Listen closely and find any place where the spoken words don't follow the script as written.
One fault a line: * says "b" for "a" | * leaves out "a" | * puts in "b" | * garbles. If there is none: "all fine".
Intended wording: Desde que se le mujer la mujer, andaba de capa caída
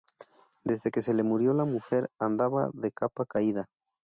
* says "murió" for "mujer"